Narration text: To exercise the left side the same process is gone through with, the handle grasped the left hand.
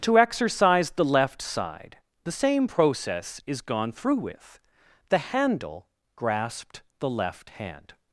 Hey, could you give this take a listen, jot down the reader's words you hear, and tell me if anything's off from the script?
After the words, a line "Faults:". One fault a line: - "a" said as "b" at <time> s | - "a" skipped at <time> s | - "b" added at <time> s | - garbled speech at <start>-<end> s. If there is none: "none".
To exercise the left side the same process is gone through with, the handle grasped the left hand.
Faults:
none